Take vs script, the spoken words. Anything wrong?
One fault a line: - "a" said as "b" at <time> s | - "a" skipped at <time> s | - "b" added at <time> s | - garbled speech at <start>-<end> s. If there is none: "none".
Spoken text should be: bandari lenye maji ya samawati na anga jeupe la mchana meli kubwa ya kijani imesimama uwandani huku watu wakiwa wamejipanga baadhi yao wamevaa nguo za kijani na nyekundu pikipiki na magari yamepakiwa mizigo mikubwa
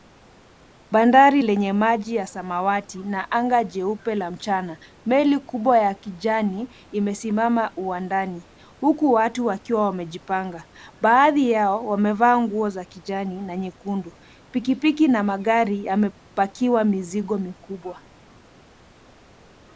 none